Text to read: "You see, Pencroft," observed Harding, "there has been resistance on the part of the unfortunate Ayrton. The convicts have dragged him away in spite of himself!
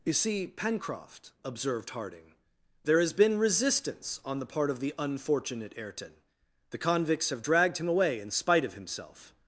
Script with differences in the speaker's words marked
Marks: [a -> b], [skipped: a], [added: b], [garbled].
"You see, Pencroft," observed Harding, "there has been resistance on the part of the unfortunate Ayrton. The convicts have dragged him away in spite of himself!